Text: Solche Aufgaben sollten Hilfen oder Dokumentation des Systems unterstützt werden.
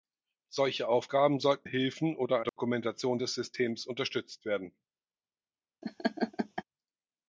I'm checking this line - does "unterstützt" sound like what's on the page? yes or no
yes